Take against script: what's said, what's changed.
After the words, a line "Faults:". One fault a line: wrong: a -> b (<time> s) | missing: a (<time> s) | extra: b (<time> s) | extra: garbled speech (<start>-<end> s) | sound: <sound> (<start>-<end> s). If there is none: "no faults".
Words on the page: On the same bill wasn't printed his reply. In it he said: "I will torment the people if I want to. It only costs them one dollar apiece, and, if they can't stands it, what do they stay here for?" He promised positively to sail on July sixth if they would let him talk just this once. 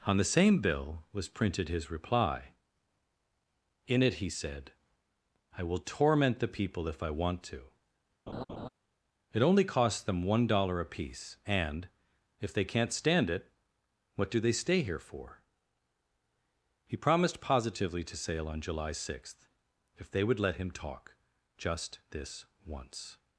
On the same bill was printed his reply. In it he said: "I will torment the people if I want to. It only costs them one dollar apiece, and, if they can't stand it, what do they stay here for?" He promised positively to sail on July sixth if they would let him talk just this once.
Faults:
wrong: wasn't -> was (1.1 s)
sound: laugh (8.3-8.7 s)
wrong: stands -> stand (12.9 s)